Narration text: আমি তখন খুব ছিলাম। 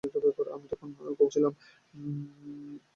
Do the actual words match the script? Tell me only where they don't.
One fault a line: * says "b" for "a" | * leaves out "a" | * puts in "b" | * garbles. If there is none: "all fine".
all fine